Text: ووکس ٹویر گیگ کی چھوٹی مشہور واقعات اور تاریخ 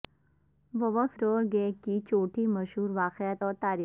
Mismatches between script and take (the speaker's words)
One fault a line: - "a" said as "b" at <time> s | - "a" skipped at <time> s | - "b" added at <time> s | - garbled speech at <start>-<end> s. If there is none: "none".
none